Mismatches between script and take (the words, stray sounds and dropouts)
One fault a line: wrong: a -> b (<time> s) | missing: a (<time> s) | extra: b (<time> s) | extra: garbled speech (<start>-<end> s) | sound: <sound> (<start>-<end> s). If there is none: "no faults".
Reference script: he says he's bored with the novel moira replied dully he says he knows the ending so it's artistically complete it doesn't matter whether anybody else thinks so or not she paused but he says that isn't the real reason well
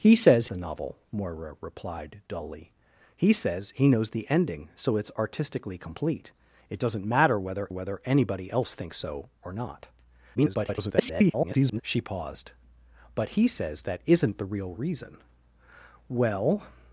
missing: he's bored with (0.5 s)
extra: whether (7.7 s)
extra: garbled speech (10.3-11.8 s)